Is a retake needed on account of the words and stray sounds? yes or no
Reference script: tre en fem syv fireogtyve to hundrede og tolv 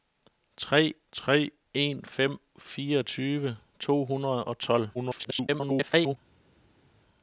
yes